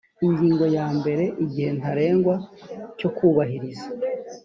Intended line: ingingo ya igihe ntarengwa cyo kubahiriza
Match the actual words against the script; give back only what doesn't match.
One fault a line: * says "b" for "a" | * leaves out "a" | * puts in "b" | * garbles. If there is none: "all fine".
* puts in "mbere"